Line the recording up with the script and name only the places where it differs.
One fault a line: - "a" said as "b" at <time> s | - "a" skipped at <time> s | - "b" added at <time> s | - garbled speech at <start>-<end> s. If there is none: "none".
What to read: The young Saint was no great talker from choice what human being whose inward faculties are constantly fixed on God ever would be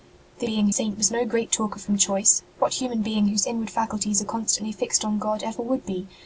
- "young" said as "being" at 0.4 s